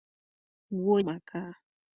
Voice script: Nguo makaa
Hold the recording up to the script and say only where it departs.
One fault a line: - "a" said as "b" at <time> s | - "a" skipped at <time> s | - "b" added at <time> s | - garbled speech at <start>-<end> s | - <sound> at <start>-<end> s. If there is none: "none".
none